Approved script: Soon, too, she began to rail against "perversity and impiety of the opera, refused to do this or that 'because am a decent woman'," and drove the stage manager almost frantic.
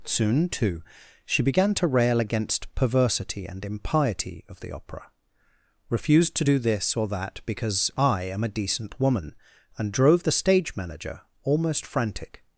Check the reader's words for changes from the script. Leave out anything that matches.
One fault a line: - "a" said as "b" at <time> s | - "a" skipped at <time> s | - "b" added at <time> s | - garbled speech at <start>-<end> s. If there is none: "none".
- "I" added at 8.0 s